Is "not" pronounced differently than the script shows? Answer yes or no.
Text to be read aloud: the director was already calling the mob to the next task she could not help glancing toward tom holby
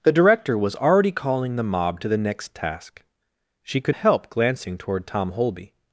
yes